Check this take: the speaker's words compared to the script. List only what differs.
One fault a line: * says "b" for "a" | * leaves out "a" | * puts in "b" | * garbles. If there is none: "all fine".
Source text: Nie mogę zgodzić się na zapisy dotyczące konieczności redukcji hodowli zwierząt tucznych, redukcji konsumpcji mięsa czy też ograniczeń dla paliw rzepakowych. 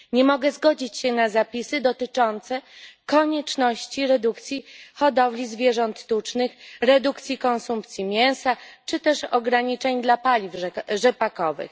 all fine